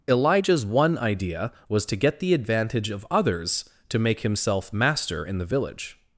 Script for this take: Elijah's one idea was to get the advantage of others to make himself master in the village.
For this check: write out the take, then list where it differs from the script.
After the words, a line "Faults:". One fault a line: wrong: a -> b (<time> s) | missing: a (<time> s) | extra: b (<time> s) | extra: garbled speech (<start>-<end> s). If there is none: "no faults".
Elijah's one idea was to get the advantage of others to make himself master in the village.
Faults:
no faults